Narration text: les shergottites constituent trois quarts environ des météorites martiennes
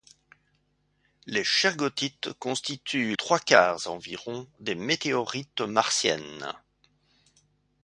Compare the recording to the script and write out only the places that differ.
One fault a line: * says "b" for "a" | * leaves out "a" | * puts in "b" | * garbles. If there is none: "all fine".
all fine